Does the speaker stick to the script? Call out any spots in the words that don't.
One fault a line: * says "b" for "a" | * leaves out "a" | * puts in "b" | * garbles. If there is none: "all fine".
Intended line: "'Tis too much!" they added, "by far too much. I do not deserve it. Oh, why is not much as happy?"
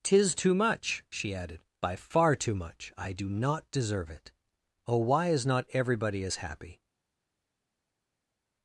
* says "she" for "they"
* says "everybody" for "much"